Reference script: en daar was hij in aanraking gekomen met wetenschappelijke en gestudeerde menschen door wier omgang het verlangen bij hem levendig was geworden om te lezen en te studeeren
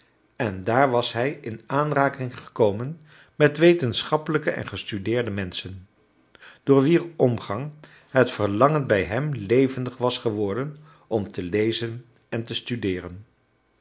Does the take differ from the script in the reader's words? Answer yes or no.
no